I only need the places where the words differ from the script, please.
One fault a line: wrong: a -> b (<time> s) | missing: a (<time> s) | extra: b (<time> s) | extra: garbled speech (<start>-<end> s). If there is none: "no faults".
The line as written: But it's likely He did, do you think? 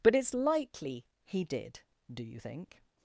no faults